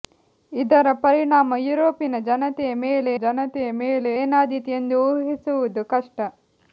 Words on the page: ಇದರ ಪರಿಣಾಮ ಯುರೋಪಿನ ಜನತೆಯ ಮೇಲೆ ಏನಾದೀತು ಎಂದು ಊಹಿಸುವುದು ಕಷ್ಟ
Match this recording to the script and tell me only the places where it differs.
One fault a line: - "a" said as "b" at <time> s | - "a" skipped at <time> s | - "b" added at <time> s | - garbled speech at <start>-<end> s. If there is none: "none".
- "ಜನತೆಯ ಮೇಲೆ" added at 3.2 s